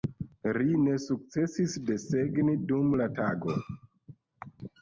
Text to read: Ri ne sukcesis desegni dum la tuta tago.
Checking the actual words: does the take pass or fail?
fail